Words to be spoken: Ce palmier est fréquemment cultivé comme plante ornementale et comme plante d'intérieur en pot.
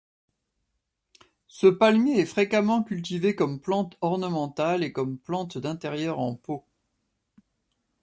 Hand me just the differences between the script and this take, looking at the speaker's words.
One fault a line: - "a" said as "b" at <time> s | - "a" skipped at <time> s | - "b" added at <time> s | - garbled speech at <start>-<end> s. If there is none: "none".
none